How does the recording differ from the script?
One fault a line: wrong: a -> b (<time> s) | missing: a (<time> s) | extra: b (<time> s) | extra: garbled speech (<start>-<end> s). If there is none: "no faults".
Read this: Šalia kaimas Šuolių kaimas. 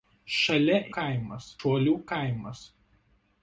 no faults